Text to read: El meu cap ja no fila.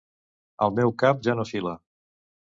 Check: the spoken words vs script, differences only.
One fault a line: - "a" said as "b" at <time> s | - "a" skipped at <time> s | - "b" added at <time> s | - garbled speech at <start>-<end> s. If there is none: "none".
none